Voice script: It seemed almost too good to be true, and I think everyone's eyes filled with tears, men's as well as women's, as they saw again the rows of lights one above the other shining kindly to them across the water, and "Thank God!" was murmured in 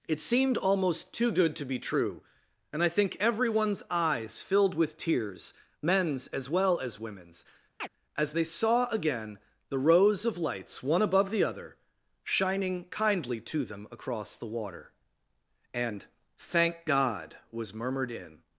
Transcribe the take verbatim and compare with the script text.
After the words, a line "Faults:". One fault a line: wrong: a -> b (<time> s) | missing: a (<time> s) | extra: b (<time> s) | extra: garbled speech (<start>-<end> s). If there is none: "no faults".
It seemed almost too good to be true, and I think everyone's eyes filled with tears, men's as well as women's, as they saw again the rows of lights one above the other shining kindly to them across the water, and "Thank God!" was murmured in
Faults:
no faults